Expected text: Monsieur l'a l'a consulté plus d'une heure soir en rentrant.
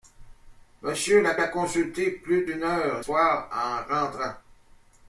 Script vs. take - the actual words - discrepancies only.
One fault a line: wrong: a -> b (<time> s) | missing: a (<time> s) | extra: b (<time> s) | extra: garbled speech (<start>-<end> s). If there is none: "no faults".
no faults